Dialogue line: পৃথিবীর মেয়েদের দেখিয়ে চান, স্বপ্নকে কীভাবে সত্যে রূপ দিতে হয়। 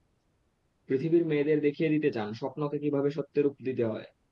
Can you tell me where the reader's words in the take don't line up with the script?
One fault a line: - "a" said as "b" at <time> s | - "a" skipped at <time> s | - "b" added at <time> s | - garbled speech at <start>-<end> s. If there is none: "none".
- "দিতে" added at 1.9 s